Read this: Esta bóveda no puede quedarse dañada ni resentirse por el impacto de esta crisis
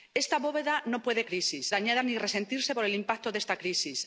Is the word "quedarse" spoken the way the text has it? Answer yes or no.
no